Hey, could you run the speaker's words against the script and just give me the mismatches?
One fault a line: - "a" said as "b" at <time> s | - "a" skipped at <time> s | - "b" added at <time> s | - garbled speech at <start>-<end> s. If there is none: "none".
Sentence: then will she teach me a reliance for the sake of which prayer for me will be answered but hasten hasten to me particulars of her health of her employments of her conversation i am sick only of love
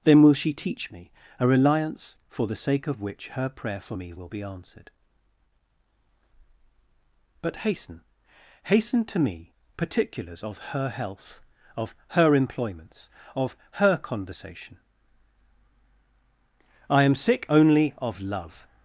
- "her" added at 3.3 s